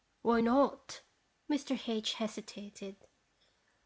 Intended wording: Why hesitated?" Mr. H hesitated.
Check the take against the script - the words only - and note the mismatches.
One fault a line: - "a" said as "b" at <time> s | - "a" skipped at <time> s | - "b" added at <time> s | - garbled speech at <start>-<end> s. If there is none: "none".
- "hesitated" said as "not" at 0.4 s